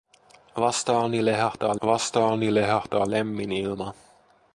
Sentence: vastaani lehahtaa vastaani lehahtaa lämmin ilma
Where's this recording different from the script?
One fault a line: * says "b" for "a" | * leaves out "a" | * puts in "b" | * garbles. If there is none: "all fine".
all fine